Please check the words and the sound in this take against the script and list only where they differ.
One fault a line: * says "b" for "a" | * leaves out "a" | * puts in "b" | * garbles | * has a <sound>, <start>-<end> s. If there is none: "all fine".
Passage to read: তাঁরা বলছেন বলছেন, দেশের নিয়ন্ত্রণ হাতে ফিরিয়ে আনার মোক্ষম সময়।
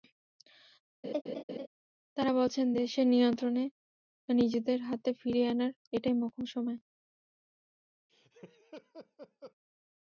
* has a laugh, 1.0-1.7 s
* leaves out "বলছেন"
* puts in "নিজেদের"
* puts in "এটাই"
* has a laugh, 8.1-9.5 s